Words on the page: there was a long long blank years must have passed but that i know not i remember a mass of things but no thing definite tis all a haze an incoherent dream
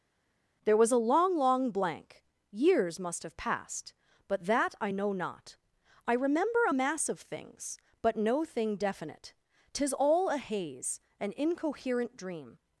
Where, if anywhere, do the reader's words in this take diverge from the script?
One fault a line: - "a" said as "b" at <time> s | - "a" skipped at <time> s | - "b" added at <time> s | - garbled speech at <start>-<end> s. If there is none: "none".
none